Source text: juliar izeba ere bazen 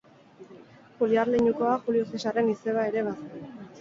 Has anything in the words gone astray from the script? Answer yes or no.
yes